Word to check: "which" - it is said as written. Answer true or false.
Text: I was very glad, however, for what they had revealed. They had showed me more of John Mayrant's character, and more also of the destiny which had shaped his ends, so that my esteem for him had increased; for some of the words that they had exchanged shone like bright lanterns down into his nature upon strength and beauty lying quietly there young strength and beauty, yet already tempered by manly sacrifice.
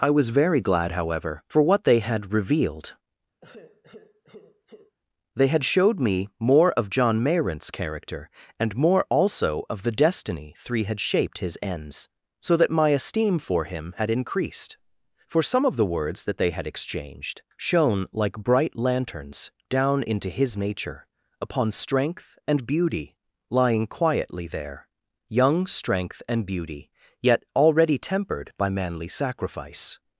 false